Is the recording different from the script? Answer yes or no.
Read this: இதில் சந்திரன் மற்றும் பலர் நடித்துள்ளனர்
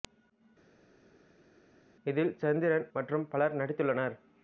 no